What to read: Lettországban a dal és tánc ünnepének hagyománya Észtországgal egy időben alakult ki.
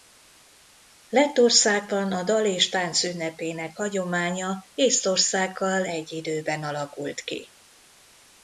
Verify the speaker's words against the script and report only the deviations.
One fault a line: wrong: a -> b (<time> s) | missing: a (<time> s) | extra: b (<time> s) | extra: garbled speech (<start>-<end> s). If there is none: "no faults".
no faults